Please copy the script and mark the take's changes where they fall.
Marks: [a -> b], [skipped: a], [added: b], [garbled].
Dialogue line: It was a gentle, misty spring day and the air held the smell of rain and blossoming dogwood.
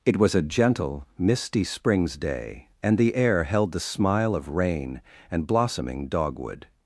It was a gentle, misty [spring -> springs] day and the air held the [smell -> smile] of rain and blossoming dogwood.